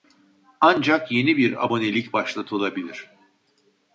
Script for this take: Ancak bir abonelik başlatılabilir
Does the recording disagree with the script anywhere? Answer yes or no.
yes